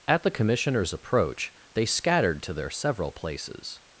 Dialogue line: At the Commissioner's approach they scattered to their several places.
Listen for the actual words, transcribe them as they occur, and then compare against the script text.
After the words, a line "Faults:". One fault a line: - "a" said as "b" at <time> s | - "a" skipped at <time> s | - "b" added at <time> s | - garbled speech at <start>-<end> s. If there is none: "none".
At the Commissioner's approach they scattered to their several places.
Faults:
none